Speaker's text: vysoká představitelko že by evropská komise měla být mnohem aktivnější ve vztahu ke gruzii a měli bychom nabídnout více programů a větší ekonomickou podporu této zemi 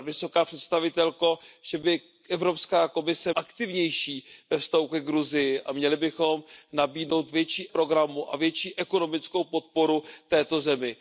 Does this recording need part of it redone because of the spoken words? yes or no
yes